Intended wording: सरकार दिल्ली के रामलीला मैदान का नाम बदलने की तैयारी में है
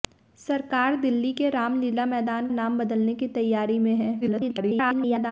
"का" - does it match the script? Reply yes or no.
no